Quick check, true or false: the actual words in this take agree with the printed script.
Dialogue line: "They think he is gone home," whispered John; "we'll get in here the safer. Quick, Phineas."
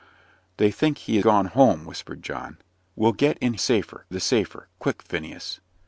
false